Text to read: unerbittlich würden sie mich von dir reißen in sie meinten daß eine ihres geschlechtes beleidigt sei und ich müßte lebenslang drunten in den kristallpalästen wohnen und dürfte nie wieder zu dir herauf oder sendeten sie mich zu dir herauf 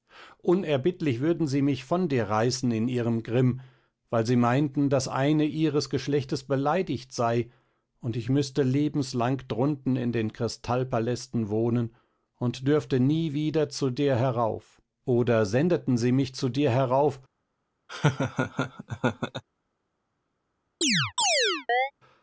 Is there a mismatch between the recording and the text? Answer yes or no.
yes